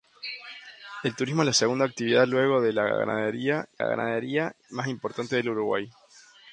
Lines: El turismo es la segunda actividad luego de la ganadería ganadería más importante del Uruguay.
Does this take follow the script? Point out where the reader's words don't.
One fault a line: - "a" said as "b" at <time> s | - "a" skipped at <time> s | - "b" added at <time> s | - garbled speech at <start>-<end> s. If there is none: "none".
none